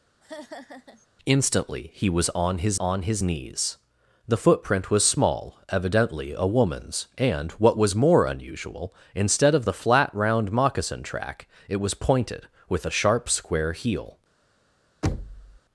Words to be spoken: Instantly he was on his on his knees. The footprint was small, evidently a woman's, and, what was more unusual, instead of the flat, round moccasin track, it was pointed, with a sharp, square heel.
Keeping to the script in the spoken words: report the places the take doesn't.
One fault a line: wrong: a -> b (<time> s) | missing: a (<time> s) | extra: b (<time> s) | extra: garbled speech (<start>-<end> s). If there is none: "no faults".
no faults